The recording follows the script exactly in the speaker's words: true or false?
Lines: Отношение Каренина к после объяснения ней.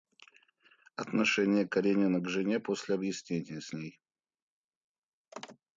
false